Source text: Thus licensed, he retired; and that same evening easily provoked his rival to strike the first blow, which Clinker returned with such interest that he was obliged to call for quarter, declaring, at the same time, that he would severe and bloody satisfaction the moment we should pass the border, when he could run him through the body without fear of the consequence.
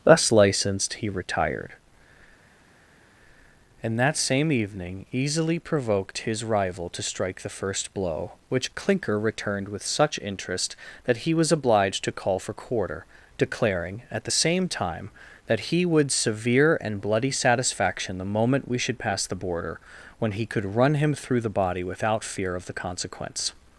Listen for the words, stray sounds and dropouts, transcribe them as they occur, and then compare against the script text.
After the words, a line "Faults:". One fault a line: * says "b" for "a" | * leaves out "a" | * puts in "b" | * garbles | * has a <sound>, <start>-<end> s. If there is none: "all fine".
Thus licensed, he retired; and that same evening easily provoked his rival to strike the first blow, which Clinker returned with such interest that he was obliged to call for quarter, declaring, at the same time, that he would severe and bloody satisfaction the moment we should pass the border, when he could run him through the body without fear of the consequence.
Faults:
all fine